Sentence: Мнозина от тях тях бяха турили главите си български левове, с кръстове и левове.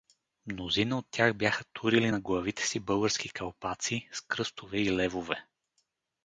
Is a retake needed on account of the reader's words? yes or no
yes